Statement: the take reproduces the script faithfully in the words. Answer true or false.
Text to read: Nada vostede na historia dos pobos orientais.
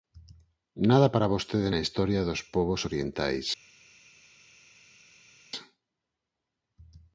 false